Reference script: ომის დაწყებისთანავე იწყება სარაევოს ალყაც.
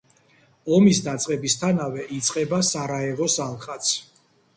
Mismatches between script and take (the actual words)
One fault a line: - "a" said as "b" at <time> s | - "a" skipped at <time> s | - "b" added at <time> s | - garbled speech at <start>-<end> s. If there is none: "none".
none